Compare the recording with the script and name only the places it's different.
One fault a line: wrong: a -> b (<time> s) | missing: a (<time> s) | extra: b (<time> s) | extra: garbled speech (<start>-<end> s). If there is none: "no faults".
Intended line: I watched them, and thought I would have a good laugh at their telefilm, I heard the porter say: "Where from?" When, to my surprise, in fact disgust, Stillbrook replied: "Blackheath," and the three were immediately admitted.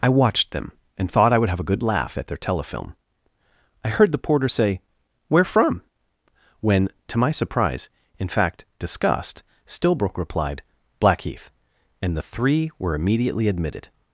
no faults